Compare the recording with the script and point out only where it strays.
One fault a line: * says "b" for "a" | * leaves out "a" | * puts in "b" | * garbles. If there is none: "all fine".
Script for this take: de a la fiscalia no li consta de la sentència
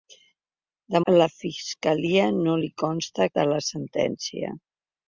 all fine